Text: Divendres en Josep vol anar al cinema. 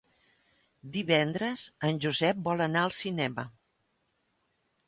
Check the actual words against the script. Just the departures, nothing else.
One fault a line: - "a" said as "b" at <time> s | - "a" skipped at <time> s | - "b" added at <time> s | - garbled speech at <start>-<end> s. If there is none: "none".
none